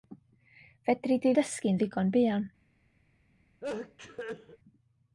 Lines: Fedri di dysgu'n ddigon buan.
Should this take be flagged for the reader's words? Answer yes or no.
no